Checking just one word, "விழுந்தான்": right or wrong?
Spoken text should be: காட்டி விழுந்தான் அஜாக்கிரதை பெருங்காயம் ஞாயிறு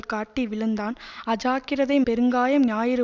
right